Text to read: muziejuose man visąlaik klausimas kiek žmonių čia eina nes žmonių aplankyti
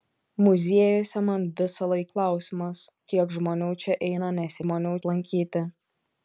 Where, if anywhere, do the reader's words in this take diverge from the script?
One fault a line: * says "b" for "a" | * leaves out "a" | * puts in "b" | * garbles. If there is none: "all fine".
all fine